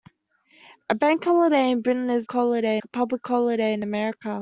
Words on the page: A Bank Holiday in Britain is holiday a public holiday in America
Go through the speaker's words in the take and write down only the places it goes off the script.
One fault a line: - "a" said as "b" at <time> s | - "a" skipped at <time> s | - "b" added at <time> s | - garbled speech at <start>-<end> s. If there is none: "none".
none